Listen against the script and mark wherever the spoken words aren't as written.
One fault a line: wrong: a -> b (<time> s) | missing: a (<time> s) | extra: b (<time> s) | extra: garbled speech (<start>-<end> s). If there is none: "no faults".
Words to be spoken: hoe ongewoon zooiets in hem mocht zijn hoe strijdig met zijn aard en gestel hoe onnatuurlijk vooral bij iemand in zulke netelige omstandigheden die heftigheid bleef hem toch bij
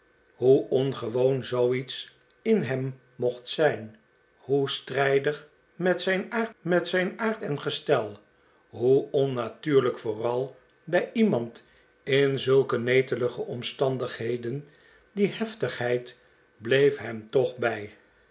extra: met zijn aard (6.6 s)